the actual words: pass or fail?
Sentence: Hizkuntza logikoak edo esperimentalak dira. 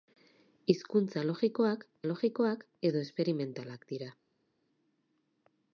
fail